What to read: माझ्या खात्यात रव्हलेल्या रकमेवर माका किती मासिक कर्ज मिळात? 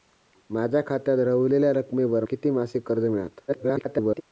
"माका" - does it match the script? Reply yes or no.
no